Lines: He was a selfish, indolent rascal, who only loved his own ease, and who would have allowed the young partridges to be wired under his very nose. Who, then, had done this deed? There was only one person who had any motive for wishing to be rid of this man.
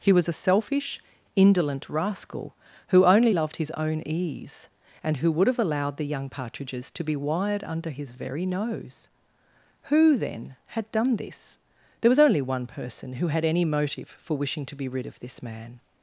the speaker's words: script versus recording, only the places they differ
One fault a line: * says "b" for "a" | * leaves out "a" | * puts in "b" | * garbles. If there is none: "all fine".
* leaves out "deed"